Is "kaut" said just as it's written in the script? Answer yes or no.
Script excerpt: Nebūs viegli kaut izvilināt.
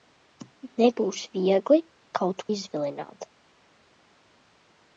yes